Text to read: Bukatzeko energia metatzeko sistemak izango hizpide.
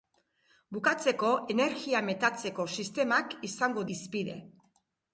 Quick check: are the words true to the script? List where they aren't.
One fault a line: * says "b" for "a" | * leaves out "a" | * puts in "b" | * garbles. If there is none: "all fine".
all fine